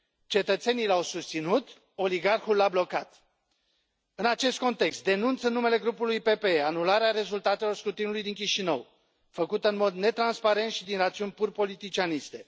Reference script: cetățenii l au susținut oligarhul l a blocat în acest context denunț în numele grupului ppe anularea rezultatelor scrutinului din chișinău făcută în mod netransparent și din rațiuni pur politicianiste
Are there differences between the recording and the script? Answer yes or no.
no